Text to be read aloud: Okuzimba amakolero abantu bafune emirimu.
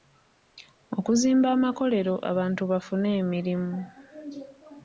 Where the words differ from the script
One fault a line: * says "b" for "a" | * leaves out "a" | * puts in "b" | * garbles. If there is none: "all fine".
all fine